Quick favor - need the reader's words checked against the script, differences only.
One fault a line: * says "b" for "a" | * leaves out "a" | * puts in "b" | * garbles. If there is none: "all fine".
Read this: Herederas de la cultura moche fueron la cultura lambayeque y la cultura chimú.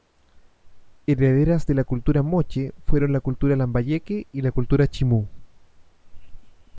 all fine